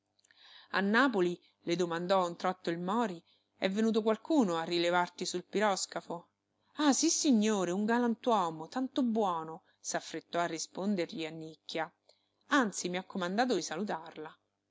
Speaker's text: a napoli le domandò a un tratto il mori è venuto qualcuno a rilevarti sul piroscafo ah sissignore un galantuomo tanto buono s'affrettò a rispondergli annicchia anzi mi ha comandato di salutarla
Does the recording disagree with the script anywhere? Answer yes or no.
no